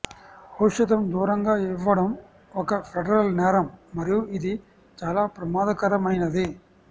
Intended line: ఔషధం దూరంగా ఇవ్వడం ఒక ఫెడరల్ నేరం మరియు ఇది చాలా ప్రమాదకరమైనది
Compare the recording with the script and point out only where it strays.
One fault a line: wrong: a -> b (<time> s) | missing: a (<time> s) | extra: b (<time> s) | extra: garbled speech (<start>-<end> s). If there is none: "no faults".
no faults